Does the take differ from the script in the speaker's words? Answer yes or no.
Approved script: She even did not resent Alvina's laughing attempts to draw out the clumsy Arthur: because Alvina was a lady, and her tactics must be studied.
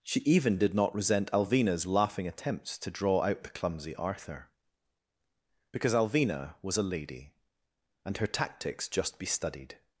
yes